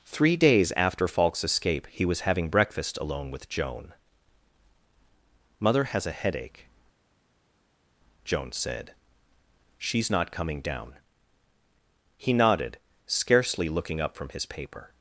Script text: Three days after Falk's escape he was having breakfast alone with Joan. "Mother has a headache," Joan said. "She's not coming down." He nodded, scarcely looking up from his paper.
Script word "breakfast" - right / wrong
right